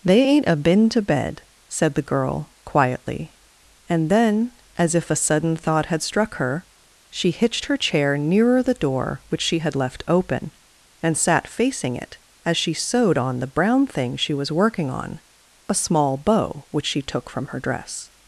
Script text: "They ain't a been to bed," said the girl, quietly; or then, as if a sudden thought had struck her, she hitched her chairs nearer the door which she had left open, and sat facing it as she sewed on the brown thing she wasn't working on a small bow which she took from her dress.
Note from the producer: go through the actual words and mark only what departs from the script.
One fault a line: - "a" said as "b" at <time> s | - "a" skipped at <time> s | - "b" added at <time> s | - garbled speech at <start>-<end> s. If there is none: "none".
- "or" said as "and" at 3.9 s
- "chairs" said as "chair" at 7.8 s
- "wasn't" said as "was" at 14.3 s